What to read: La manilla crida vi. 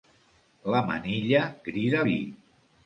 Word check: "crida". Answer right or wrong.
right